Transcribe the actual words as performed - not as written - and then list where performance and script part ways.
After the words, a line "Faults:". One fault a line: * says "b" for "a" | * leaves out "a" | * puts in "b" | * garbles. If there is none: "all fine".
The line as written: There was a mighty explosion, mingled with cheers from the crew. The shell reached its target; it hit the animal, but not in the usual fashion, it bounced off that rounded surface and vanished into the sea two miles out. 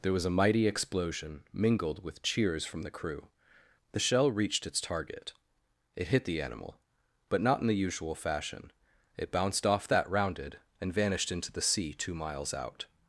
There was a mighty explosion, mingled with cheers from the crew. The shell reached its target; it hit the animal, but not in the usual fashion, it bounced off that rounded and vanished into the sea two miles out.
Faults:
* leaves out "surface"